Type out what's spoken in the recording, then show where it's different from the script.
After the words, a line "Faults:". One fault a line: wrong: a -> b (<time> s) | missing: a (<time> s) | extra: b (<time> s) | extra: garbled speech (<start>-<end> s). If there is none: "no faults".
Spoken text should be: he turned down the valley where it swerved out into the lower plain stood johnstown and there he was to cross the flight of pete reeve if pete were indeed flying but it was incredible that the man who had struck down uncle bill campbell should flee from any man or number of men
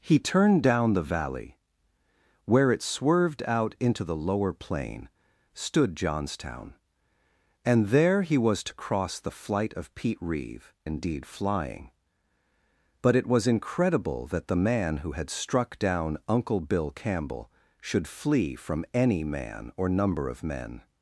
he turned down the valley where it swerved out into the lower plain stood johnstown and there he was to cross the flight of pete reeve indeed flying but it was incredible that the man who had struck down uncle bill campbell should flee from any man or number of men
Faults:
missing: if pete were (10.7 s)